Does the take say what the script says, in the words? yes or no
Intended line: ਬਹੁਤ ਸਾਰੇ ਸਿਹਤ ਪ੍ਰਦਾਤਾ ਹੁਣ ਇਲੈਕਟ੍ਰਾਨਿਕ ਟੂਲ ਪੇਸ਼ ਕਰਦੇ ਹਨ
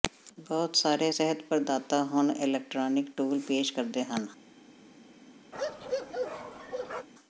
yes